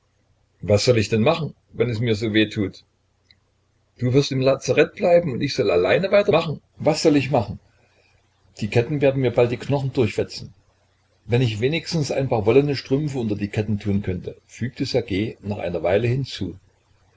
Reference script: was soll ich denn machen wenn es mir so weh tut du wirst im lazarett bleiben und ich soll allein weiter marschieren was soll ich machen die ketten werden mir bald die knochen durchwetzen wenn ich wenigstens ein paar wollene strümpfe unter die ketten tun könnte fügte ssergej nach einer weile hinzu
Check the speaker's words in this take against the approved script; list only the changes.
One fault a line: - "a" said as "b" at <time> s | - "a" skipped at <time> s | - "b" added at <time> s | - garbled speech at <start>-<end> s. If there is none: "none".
- "marschieren" said as "machen" at 6.3 s